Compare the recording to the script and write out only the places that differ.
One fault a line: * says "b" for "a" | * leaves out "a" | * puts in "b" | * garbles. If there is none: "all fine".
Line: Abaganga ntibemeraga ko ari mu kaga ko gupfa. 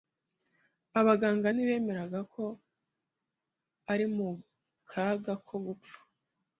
all fine